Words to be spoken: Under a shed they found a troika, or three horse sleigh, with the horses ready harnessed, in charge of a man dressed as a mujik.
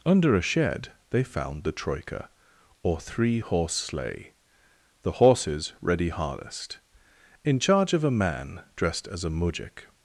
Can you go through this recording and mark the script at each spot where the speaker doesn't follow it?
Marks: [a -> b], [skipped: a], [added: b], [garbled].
Under a shed they found [a -> the] troika, or three horse sleigh, [skipped: with] the horses ready harnessed, in charge of a man dressed as a mujik.